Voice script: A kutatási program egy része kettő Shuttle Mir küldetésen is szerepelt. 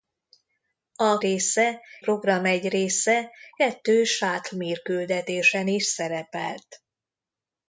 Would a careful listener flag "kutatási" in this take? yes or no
yes